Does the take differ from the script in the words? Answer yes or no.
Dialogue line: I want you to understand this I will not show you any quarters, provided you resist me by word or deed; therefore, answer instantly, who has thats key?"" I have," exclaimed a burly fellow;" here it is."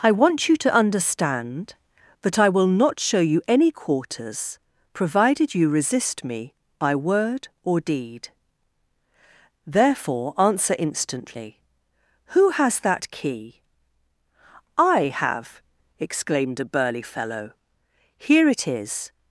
yes